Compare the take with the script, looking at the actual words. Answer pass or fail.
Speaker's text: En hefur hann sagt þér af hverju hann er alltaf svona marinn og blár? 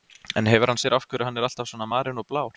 fail